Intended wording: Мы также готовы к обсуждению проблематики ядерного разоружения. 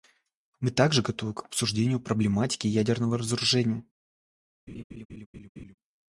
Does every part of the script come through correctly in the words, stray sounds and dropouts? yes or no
no